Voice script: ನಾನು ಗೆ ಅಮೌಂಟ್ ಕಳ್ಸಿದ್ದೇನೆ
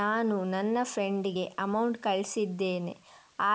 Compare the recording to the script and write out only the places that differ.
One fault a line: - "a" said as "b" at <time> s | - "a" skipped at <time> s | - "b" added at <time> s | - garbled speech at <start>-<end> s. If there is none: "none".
- "ನನ್ನ ಫ್ರೆಂಡ್" added at 0.5 s